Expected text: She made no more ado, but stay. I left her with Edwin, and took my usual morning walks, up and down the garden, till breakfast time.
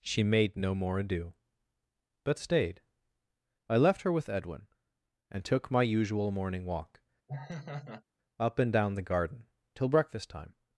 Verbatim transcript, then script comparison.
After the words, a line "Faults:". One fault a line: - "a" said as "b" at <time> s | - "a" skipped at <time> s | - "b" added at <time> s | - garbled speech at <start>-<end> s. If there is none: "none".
She made no more ado, but stayed. I left her with Edwin, and took my usual morning walk, up and down the garden, till breakfast time.
Faults:
- "stay" said as "stayed" at 2.4 s
- "walks" said as "walk" at 6.7 s